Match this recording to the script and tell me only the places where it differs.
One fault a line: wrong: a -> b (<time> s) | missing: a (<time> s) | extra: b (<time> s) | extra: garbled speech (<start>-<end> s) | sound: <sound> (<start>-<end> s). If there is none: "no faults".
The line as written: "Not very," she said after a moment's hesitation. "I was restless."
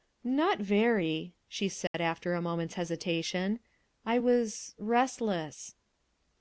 sound: dropout (1.9-1.9 s)